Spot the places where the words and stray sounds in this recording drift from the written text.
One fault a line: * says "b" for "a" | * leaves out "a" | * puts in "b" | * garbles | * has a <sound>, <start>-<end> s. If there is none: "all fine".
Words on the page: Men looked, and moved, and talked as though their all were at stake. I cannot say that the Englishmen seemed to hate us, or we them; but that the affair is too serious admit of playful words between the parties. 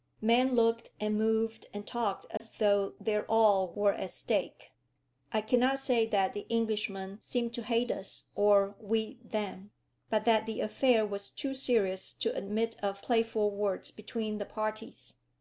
* has a dropout, 2.4-2.4 s
* says "was" for "is"
* puts in "to"